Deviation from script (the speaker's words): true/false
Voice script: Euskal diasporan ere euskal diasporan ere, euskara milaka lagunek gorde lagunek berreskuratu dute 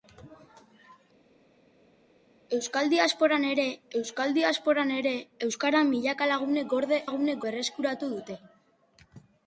false